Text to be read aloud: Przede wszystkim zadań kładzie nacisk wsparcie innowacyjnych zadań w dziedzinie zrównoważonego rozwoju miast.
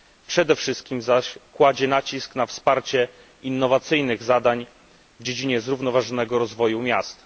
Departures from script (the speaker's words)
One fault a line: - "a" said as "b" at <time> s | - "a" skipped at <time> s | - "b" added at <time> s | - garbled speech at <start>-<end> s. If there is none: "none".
- "zadań" said as "zaś" at 1.0 s
- "na" added at 2.4 s